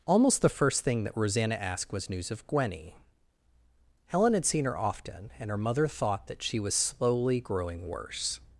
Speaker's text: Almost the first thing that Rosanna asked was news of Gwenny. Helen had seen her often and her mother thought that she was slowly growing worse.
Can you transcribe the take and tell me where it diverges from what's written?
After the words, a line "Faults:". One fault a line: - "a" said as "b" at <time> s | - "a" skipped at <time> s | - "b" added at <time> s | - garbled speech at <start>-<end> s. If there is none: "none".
Almost the first thing that Rosanna asked was news of Gwenny. Helen had seen her often and her mother thought that she was slowly growing worse.
Faults:
none